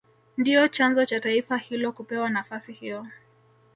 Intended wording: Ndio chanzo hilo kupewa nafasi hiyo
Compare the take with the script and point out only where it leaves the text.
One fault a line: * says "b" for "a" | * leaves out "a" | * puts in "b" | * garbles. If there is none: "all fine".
* puts in "cha taifa"